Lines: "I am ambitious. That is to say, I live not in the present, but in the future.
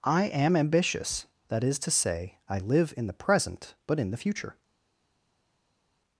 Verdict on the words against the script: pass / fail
fail